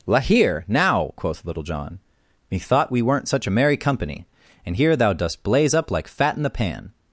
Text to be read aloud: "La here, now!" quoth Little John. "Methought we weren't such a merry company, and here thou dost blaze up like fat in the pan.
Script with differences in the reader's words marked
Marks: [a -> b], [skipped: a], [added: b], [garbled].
"La here, now!" quoth Little John. "Methought we weren't such a merry company, and here thou dost blaze up like fat in the pan.